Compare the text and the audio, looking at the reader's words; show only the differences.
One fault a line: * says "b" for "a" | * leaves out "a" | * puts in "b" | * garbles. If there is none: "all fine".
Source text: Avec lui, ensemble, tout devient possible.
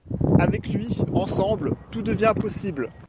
all fine